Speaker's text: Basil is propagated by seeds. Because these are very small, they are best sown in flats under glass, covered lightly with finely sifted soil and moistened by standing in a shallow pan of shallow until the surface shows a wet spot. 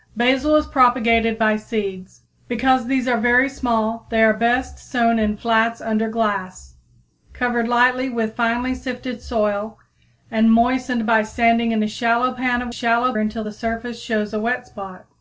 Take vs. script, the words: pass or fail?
pass